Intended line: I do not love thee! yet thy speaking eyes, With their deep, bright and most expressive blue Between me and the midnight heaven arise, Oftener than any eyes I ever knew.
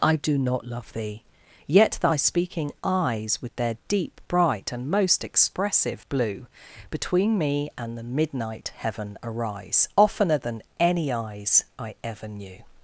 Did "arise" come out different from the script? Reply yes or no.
no